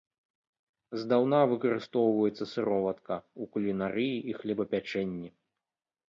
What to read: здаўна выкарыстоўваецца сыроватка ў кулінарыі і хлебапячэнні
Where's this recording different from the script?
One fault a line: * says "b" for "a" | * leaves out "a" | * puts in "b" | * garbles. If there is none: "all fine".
all fine